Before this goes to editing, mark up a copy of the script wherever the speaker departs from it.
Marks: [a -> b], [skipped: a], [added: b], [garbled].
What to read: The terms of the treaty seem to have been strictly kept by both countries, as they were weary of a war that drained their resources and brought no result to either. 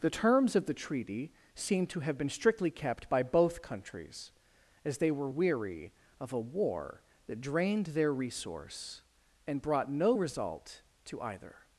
The terms of the treaty seem to have been strictly kept by both countries, as they were weary of a war that drained their [resources -> resource] and brought no result to either.